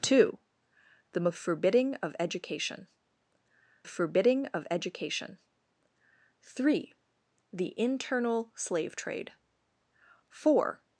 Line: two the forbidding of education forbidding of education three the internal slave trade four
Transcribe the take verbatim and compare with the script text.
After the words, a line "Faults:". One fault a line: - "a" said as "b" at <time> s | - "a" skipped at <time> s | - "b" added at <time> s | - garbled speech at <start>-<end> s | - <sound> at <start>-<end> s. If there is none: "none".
two the forbidding of education forbidding of education three the internal slave trade four
Faults:
none